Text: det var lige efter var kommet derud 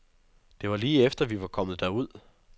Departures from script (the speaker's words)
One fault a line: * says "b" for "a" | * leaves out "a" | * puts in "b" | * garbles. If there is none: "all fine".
* puts in "vi"